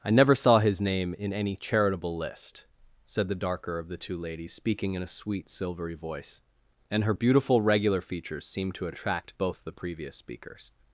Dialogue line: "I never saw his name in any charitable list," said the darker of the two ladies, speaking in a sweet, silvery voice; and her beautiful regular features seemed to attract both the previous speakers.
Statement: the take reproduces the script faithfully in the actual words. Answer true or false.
true